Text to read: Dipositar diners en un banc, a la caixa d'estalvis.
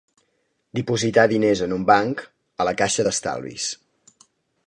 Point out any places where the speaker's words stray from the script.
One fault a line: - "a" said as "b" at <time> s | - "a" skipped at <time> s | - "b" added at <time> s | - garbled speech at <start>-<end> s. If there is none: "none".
none